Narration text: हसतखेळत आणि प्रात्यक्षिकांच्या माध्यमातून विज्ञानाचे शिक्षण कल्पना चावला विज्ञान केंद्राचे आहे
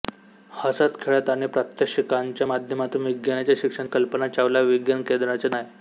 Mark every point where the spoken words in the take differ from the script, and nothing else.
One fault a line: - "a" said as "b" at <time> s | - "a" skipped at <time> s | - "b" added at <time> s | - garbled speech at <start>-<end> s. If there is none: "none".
none